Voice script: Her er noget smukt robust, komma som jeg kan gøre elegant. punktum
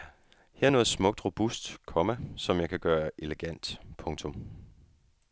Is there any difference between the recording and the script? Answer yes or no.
no